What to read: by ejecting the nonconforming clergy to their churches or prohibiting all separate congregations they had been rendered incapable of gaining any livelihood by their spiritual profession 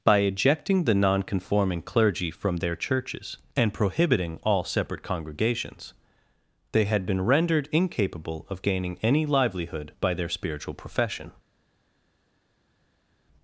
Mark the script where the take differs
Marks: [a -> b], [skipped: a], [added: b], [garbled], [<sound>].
by ejecting the nonconforming clergy [to -> from] their churches [or -> and] prohibiting all separate congregations they had been rendered incapable of gaining any livelihood by their spiritual profession